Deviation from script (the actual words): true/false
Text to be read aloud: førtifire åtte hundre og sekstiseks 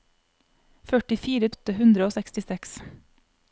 false